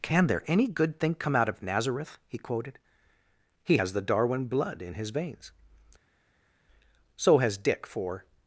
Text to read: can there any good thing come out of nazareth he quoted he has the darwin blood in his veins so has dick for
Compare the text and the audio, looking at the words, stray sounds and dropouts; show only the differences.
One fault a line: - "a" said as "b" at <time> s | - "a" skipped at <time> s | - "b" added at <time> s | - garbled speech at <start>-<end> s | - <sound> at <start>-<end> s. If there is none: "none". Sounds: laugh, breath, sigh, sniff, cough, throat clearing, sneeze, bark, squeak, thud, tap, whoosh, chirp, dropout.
none